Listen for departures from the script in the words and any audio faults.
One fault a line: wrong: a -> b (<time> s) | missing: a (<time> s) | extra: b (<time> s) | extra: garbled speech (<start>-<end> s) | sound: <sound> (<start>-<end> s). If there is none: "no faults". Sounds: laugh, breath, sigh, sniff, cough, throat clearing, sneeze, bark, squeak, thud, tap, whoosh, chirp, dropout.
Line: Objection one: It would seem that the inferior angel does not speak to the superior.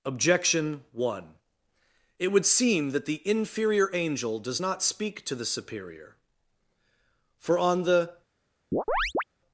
extra: For on the (7.4 s)
sound: chirp (8.7-9.2 s)